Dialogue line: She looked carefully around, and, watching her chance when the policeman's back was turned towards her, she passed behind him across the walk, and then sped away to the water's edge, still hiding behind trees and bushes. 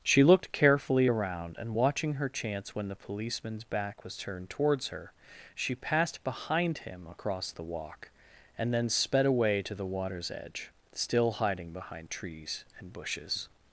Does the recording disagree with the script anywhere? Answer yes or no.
no